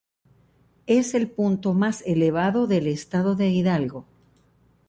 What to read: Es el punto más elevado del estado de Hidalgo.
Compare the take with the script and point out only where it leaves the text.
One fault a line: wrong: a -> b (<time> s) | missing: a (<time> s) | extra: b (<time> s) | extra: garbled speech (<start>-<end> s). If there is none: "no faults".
no faults